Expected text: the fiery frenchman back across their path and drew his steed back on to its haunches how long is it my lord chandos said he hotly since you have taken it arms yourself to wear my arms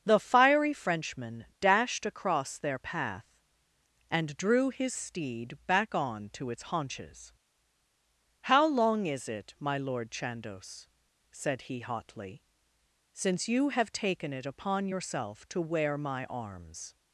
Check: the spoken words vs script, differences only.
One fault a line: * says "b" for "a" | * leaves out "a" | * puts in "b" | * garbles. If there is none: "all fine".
* says "dashed" for "back"
* says "upon" for "arms"